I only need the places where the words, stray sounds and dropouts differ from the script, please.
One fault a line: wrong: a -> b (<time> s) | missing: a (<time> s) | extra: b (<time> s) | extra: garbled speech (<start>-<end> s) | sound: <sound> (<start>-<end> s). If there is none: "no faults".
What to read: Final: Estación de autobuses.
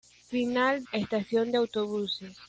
no faults